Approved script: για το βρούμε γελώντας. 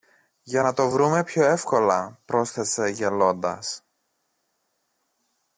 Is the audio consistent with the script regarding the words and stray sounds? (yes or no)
no